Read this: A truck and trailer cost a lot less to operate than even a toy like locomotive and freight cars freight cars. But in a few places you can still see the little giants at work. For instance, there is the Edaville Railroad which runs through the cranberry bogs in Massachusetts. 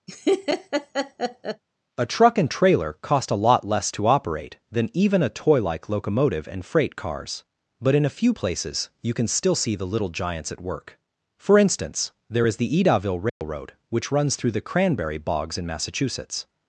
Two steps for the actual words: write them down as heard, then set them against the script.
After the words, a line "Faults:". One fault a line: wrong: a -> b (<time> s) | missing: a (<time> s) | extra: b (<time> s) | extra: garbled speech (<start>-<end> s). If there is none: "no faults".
A truck and trailer cost a lot less to operate than even a toy like locomotive and freight cars. But in a few places you can still see the little giants at work. For instance, there is the Edaville Railroad which runs through the cranberry bogs in Massachusetts.
Faults:
missing: freight cars (7.4 s)